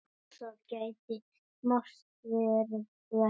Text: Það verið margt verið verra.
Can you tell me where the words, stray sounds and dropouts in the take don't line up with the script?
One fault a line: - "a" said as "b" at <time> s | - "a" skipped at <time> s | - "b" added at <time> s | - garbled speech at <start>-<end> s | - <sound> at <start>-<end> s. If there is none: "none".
- "verið" said as "gæti" at 0.7 s